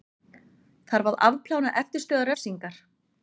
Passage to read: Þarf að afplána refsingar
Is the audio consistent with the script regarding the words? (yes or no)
no